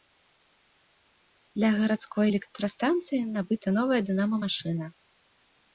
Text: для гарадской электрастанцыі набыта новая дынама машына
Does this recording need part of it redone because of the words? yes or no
no